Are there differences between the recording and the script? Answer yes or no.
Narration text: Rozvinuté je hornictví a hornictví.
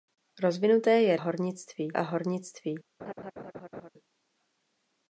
no